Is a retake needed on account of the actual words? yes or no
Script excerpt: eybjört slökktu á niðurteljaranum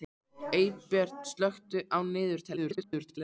yes